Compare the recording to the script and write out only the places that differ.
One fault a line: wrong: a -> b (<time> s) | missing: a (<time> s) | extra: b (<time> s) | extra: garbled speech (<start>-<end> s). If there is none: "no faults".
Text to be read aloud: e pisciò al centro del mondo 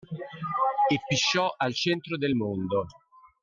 no faults